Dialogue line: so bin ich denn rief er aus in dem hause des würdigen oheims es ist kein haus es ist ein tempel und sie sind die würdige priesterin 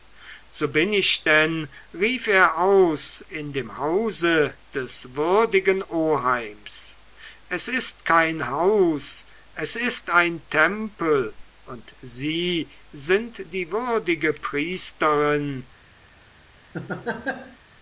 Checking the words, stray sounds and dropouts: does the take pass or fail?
fail